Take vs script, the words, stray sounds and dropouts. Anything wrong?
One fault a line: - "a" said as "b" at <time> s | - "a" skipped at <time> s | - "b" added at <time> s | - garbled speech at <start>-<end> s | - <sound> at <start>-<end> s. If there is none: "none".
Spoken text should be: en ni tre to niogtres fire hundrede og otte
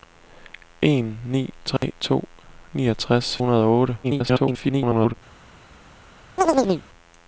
- dropout at 1.8-1.8 s
- "fire" skipped at 3.4 s
- garbled speech at 4.0-5.1 s
- chirp at 6.4-6.9 s